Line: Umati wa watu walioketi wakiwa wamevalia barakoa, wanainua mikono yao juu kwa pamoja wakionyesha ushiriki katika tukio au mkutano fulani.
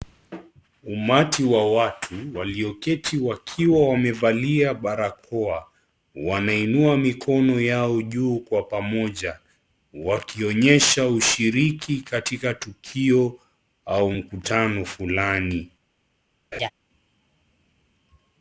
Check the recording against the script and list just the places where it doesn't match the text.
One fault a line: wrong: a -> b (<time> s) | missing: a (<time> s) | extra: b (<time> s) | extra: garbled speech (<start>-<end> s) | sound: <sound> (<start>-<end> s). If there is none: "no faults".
sound: laugh (16.5-16.7 s)